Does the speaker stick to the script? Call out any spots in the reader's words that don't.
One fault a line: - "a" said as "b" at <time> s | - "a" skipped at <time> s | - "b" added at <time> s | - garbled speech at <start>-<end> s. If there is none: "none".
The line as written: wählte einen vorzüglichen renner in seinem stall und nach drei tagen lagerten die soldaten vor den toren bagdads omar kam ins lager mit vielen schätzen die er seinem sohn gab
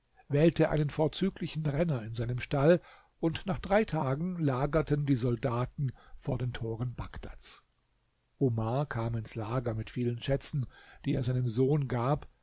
none